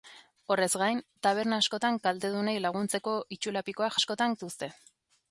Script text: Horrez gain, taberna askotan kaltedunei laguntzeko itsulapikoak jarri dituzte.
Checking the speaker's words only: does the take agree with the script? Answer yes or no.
no